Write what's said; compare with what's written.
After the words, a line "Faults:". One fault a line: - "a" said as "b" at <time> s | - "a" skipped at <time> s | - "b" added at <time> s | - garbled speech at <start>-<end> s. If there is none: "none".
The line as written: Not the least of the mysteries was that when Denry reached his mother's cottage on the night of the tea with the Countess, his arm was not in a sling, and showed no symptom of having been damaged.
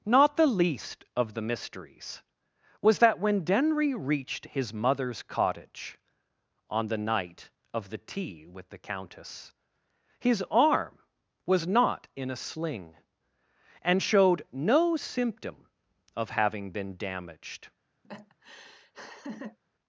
Not the least of the mysteries was that when Denry reached his mother's cottage on the night of the tea with the Countess, his arm was not in a sling, and showed no symptom of having been damaged.
Faults:
none